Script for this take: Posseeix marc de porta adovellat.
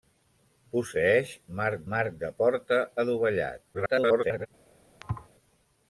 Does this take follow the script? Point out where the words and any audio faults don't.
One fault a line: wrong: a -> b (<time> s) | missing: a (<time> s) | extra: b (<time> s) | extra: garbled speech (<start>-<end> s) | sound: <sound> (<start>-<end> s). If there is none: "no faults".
extra: marc (1.9 s)
extra: garbled speech (3.7-4.5 s)
sound: thud (5.0-5.3 s)